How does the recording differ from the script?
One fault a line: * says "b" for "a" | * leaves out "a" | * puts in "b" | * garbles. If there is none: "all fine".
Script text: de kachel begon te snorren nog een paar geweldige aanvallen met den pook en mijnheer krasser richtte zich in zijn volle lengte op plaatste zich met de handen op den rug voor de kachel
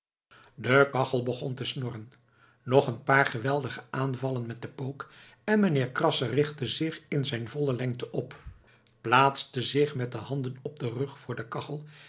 all fine